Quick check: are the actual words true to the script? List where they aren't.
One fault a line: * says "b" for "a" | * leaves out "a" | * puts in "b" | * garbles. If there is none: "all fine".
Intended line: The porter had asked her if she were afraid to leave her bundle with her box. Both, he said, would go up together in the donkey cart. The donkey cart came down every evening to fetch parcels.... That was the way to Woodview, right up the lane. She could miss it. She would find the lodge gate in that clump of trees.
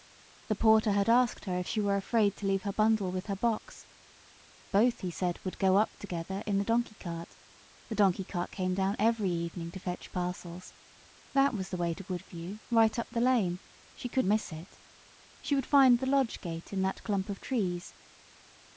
all fine